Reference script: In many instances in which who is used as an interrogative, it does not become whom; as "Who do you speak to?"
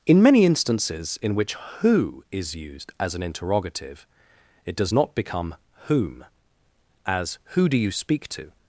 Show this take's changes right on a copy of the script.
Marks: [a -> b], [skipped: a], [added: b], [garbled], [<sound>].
In many instances in which who is used as an interrogative, it does not become whom; as "Who do you speak to?"